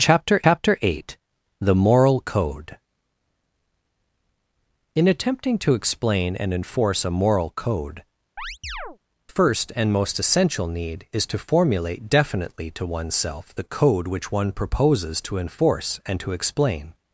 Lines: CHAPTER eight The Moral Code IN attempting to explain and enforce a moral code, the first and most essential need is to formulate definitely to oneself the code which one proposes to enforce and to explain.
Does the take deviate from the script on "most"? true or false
false